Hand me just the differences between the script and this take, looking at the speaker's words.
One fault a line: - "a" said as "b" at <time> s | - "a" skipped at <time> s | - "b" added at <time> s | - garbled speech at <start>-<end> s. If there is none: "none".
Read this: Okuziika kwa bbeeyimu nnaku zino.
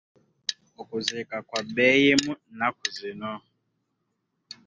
none